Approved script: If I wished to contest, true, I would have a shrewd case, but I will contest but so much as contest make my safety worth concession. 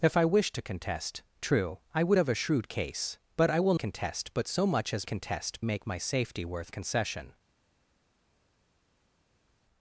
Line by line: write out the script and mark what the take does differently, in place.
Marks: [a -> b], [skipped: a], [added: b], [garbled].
If I wished to contest, true, I would have a shrewd case, but I will contest but so much as contest make my safety worth concession.